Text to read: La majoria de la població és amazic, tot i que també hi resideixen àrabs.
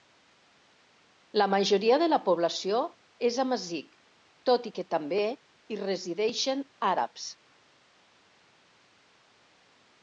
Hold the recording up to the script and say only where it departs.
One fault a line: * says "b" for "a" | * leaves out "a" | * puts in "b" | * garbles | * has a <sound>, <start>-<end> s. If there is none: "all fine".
all fine